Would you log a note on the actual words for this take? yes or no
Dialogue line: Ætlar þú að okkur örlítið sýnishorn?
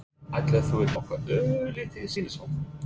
no